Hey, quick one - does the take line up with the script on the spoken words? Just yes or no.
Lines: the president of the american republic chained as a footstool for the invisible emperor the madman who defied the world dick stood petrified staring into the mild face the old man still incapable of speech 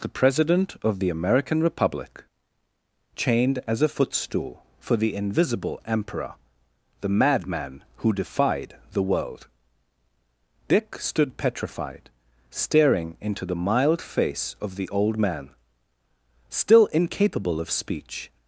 no